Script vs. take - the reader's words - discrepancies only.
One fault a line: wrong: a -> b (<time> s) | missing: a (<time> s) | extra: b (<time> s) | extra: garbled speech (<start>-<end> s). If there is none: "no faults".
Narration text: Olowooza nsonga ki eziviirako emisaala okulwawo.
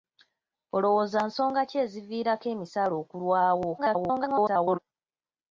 extra: garbled speech (3.8-4.8 s)